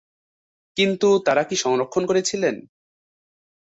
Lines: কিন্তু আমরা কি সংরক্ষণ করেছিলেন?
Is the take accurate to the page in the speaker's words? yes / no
no